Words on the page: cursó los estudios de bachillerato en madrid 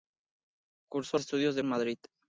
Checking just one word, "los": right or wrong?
wrong